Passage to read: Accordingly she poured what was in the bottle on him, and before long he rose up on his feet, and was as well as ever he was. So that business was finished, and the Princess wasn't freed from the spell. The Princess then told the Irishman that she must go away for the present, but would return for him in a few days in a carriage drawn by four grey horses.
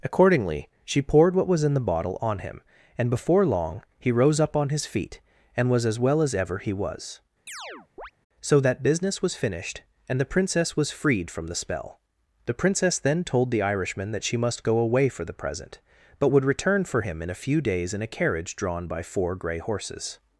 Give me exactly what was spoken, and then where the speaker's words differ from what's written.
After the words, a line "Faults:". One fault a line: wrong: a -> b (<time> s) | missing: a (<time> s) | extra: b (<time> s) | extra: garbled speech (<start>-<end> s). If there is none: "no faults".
Accordingly she poured what was in the bottle on him, and before long he rose up on his feet, and was as well as ever he was. So that business was finished, and the Princess was freed from the spell. The Princess then told the Irishman that she must go away for the present, but would return for him in a few days in a carriage drawn by four grey horses.
Faults:
wrong: wasn't -> was (10.8 s)